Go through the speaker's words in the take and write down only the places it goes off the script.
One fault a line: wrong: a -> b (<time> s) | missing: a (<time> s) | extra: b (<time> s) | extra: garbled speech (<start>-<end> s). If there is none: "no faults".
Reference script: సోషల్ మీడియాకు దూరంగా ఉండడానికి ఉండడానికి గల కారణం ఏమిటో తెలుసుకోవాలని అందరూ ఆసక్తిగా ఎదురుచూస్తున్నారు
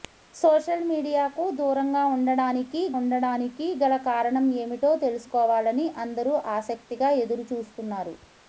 no faults